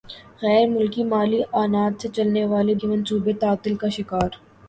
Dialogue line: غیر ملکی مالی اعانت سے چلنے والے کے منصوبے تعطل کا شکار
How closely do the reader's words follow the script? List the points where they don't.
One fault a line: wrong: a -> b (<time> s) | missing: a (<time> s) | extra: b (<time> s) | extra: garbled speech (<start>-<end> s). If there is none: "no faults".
no faults